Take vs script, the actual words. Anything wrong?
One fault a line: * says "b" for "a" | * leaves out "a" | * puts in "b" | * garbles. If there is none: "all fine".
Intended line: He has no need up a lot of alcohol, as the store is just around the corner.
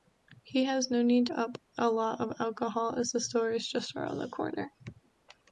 all fine